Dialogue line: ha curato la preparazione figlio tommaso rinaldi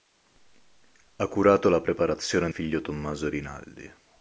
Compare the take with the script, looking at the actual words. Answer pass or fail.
pass